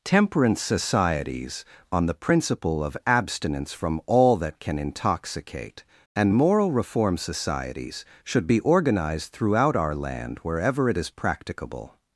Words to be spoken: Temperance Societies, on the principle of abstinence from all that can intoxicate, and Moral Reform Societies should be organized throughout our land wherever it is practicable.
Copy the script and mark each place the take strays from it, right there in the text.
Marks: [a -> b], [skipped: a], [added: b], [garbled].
Temperance Societies, on the principle of abstinence from all that can intoxicate, and Moral Reform Societies should be organized throughout our land wherever it is practicable.